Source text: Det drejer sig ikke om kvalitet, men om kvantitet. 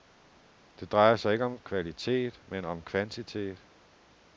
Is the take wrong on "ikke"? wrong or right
right